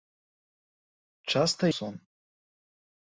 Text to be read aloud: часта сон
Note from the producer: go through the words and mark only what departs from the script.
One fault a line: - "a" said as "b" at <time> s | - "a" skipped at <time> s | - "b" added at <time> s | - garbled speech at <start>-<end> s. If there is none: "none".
none